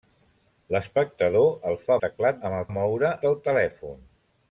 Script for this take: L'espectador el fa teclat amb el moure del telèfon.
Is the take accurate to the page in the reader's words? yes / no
yes